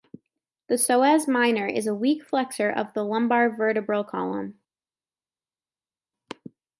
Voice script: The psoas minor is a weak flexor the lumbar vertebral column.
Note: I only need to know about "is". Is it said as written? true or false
true